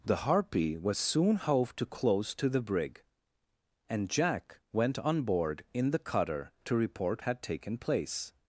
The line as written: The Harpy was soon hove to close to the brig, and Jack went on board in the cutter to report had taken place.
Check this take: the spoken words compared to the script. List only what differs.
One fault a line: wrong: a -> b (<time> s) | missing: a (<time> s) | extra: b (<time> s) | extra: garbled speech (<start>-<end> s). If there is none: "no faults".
no faults